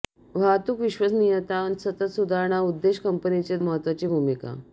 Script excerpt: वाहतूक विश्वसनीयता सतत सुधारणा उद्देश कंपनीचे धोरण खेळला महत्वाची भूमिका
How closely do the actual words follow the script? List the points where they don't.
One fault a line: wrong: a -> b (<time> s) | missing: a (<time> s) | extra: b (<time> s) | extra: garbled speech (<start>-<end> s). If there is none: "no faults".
missing: धोरण खेळला (3.6 s)